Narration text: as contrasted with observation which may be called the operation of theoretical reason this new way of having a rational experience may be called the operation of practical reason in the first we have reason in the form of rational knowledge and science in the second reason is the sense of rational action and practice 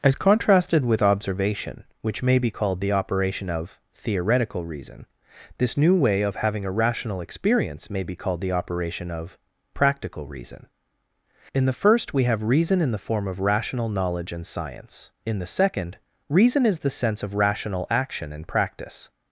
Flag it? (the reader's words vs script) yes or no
no